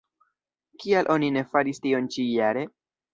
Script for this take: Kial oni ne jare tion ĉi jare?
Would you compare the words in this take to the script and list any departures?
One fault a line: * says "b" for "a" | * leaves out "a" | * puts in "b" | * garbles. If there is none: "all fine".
* says "faris" for "jare"